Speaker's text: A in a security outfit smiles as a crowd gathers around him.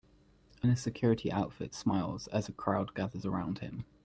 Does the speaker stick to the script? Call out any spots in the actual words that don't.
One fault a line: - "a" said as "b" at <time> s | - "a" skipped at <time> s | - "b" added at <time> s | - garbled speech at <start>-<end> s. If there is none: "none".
none